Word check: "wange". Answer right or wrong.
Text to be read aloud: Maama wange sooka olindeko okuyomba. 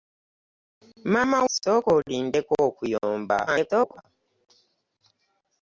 wrong